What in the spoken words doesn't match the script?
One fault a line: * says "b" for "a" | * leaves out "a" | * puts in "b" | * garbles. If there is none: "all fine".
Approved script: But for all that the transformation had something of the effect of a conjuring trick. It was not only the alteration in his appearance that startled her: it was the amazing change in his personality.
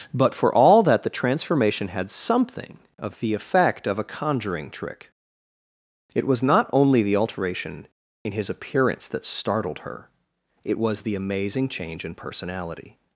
* leaves out "his"